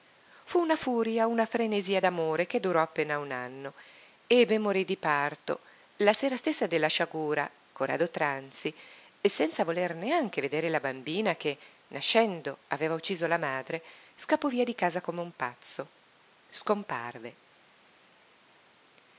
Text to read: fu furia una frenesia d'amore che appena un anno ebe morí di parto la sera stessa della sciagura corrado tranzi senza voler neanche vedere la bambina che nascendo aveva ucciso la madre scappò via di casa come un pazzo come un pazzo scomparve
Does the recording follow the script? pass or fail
fail